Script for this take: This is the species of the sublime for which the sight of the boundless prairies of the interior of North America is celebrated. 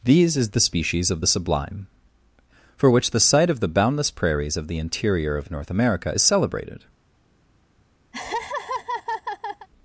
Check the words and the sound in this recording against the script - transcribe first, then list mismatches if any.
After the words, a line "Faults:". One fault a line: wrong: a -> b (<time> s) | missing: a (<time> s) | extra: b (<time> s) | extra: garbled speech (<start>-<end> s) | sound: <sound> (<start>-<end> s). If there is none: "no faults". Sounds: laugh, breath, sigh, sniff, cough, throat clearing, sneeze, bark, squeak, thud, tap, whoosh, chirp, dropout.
These is the species of the sublime for which the sight of the boundless prairies of the interior of North America is celebrated.
Faults:
wrong: This -> These (0.0 s)
sound: laugh (8.1-9.7 s)